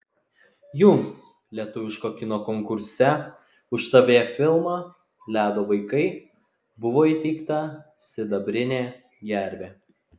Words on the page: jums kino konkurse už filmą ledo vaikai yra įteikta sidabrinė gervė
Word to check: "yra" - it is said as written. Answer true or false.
false